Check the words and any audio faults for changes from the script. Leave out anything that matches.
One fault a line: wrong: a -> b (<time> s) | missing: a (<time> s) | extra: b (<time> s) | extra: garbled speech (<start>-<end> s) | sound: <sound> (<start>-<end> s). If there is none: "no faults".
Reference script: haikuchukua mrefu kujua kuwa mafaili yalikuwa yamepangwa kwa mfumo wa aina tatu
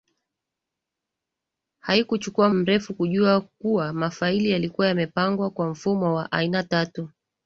no faults